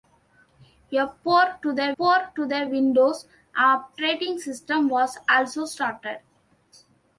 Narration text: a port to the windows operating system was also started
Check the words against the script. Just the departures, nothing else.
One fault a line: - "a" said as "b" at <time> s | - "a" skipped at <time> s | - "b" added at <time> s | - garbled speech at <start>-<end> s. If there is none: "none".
- "port to the" added at 2.0 s